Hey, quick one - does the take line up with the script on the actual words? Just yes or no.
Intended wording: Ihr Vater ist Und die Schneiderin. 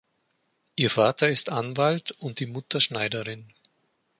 no